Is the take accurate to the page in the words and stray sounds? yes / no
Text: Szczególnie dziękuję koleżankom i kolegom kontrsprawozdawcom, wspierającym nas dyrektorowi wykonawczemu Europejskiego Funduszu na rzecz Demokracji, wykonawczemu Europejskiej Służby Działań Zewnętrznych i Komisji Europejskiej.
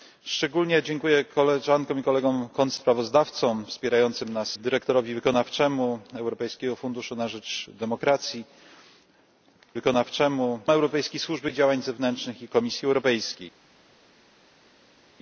yes